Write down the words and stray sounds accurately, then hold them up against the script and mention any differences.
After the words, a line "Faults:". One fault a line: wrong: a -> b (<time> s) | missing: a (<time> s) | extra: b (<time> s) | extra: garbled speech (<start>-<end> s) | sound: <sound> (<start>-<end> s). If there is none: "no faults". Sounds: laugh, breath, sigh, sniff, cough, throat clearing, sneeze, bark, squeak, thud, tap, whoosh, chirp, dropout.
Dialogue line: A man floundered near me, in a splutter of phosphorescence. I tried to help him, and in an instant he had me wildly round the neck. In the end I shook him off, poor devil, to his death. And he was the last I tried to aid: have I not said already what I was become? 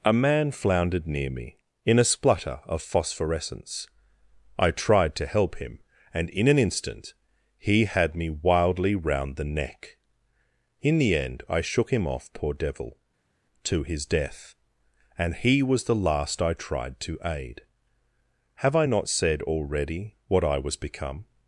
A man floundered near me, in a splutter of phosphorescence. I tried to help him, and in an instant he had me wildly round the neck. In the end I shook him off, poor devil, to his death. And he was the last I tried to aid: have I not said already what I was become?
Faults:
no faults